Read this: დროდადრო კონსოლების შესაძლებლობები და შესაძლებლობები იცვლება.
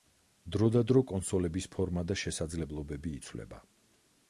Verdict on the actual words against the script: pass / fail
fail